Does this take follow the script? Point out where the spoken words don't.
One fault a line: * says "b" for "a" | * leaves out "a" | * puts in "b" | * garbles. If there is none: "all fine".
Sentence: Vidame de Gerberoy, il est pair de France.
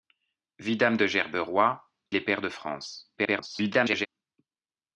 * leaves out "il"
* garbles